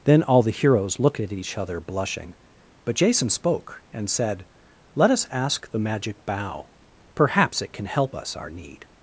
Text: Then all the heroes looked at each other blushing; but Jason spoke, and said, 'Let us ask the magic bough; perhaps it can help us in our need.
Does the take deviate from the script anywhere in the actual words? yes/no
yes